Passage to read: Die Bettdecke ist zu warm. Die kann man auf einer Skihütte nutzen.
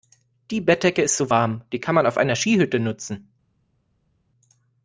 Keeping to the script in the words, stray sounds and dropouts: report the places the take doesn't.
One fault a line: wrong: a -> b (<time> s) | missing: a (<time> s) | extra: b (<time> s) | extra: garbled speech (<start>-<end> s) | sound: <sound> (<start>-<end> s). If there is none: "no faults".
no faults